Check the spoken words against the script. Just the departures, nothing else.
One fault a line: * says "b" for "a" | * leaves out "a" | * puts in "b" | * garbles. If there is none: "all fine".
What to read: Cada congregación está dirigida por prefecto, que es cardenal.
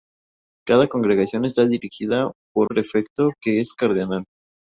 all fine